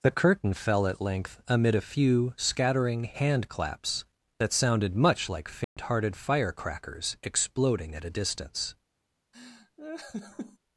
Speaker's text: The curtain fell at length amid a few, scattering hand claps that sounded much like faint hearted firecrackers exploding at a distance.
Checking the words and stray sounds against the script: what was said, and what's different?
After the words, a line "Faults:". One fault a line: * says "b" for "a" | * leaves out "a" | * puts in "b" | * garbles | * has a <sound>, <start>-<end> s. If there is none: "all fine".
The curtain fell at length amid a few, scattering hand claps that sounded much like faint hearted firecrackers exploding at a distance.
Faults:
* has a dropout, 5.6-5.8 s
* has a laugh, 9.3-10.6 s